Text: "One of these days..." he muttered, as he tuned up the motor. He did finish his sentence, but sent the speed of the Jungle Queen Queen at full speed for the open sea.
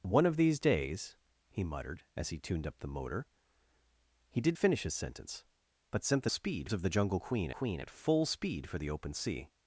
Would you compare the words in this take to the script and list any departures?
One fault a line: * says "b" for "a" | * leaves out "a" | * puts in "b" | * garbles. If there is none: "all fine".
all fine